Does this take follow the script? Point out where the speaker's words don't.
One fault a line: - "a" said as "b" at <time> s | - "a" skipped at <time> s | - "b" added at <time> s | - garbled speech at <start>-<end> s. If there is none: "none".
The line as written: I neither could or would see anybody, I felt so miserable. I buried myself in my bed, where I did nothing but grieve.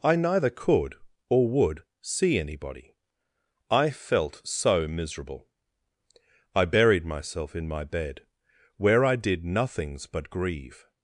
- "nothing" said as "nothings" at 9.4 s